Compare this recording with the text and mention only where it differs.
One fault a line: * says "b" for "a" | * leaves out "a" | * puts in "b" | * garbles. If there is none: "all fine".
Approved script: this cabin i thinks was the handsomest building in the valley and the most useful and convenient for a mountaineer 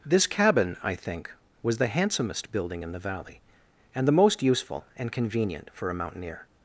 * says "think" for "thinks"